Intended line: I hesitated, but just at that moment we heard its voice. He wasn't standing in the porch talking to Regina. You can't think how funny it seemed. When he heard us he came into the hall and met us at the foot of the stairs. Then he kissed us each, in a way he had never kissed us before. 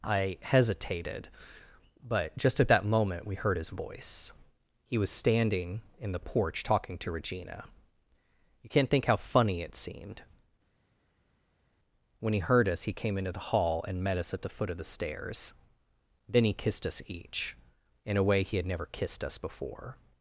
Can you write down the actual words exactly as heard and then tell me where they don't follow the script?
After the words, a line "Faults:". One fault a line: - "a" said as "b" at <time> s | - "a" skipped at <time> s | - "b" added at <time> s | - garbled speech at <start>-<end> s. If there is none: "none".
I hesitated, but just at that moment we heard his voice. He was standing in the porch talking to Regina. You can't think how funny it seemed. When he heard us he came into the hall and met us at the foot of the stairs. Then he kissed us each, in a way he had never kissed us before.
Faults:
- "its" said as "his" at 3.6 s
- "wasn't" said as "was" at 5.0 s